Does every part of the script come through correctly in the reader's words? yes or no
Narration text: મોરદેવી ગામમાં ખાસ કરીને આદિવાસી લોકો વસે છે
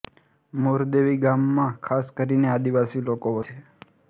no